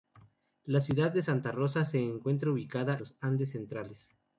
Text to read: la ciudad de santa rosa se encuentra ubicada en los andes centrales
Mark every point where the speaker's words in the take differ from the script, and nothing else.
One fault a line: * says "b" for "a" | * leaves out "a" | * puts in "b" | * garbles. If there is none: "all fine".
* leaves out "en"